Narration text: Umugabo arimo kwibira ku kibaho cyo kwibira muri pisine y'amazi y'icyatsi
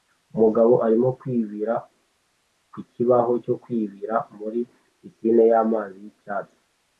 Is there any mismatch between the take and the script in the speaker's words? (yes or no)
no